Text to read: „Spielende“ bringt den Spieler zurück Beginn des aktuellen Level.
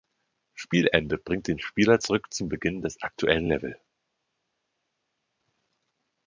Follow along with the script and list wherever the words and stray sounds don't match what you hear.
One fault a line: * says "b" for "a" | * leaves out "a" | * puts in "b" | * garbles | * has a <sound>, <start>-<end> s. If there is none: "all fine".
* puts in "zum"